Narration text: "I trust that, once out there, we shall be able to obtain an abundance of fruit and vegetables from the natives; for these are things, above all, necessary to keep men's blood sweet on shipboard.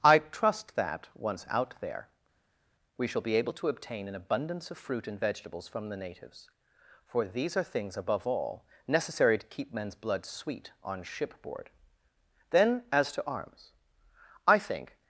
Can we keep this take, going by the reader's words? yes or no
no